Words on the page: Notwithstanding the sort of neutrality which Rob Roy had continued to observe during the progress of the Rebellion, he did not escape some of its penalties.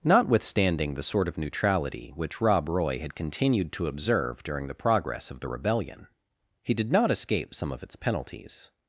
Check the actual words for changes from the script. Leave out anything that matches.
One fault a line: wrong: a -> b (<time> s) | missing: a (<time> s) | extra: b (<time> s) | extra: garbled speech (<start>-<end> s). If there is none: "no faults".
no faults